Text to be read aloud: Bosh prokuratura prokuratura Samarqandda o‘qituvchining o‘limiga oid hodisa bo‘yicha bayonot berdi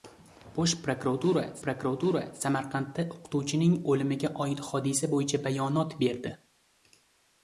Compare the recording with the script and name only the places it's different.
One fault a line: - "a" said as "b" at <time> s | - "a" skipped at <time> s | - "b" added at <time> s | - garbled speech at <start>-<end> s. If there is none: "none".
none